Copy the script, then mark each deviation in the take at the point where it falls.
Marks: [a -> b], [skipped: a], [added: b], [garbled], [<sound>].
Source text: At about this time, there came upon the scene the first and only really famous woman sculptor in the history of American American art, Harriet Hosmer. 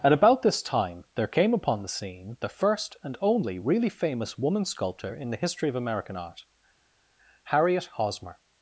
At about this time, there came upon the scene the first and only really famous woman sculptor in the history of American [skipped: American] art, Harriet Hosmer.